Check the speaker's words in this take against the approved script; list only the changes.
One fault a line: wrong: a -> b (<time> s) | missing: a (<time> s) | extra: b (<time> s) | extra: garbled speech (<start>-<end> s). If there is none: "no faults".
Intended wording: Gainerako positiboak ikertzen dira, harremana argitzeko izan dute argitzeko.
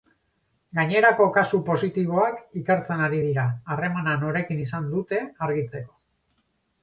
extra: kasu (1.3 s)
extra: ari (3.1 s)
wrong: argitzeko -> norekin (4.2 s)